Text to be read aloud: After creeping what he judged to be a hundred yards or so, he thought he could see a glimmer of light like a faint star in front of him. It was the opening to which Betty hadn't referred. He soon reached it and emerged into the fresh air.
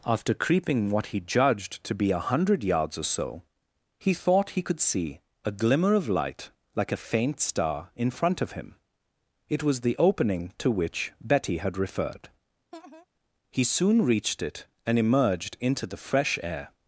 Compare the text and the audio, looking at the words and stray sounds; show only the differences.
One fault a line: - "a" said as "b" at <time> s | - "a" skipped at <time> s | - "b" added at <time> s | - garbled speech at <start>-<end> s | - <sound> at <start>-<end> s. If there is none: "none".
- "hadn't" said as "had" at 11.6 s
- laugh at 12.7-13.1 s